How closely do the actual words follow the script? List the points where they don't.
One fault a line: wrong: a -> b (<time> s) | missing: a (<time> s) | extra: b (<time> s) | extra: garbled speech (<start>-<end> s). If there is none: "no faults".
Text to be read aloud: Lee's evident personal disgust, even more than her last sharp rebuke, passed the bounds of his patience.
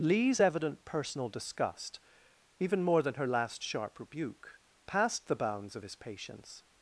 no faults